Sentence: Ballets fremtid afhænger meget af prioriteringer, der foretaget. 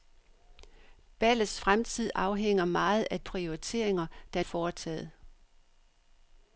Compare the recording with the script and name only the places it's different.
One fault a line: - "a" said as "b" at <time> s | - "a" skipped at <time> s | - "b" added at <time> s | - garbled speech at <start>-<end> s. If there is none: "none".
none